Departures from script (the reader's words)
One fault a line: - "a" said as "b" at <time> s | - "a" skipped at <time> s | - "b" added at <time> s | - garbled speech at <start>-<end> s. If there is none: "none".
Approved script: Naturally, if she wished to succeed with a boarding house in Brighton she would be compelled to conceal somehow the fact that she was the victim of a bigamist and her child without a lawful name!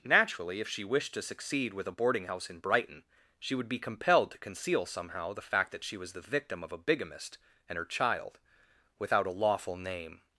none